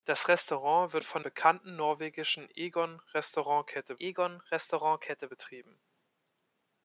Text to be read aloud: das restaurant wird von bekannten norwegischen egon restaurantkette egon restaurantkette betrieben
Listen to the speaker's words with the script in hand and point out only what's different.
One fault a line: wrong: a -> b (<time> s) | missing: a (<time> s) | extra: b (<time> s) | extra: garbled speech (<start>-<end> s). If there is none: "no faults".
no faults